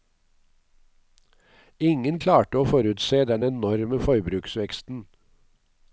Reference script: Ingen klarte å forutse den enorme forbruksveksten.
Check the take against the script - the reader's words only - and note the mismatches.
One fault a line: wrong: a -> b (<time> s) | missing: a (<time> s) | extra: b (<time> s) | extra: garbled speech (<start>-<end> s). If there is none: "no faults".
no faults